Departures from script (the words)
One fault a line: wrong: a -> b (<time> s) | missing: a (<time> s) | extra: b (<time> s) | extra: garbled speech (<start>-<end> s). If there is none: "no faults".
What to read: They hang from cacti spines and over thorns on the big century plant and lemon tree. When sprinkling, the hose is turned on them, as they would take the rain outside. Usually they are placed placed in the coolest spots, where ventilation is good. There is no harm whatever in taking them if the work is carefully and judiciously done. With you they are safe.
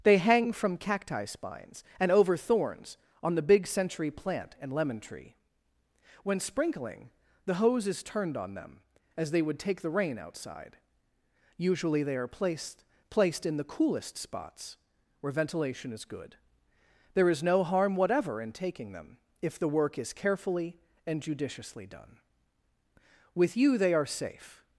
no faults